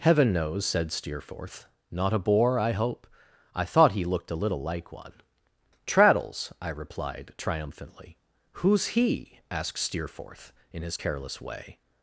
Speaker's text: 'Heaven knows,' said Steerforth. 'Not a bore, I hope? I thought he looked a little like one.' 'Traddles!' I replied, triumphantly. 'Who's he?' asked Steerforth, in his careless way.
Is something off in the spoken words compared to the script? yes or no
no